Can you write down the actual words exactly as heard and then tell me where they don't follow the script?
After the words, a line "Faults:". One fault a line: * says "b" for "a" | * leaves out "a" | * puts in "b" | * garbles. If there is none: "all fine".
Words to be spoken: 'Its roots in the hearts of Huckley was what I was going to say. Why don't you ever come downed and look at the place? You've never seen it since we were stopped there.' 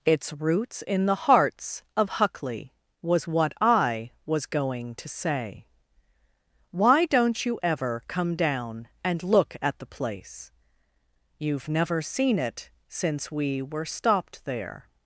'Its roots in the hearts of Huckley was what I was going to say. Why don't you ever come down and look at the place? You've never seen it since we were stopped there.'
Faults:
* says "down" for "downed"